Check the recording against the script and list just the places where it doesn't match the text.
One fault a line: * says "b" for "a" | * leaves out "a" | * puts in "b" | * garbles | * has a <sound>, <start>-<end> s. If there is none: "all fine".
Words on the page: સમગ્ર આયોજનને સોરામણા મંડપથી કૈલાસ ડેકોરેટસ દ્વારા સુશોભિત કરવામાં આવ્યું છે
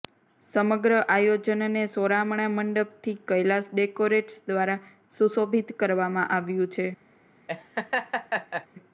* has a laugh, 7.5-8.7 s